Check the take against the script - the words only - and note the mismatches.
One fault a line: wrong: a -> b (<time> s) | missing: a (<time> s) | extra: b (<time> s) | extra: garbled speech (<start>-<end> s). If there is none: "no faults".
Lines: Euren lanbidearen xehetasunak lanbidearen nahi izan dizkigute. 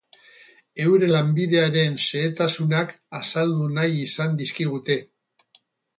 wrong: lanbidearen -> azaldu (3.2 s)